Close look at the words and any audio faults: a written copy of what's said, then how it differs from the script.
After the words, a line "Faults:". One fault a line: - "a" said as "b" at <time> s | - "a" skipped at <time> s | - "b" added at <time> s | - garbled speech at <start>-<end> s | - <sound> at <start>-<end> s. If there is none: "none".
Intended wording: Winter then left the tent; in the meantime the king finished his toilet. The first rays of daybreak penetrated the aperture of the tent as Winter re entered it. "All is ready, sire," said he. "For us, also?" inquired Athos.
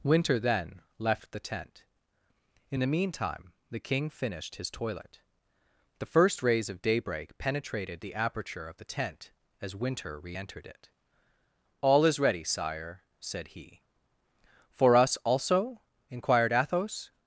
Winter then left the tent; in the meantime the king finished his toilet. The first rays of daybreak penetrated the aperture of the tent as Winter re entered it. "All is ready, sire," said he. "For us, also?" inquired Athos.
Faults:
none